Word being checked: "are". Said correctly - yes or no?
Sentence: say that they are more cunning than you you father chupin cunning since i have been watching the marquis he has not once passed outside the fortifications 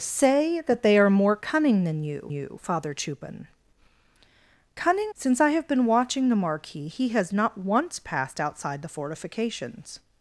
yes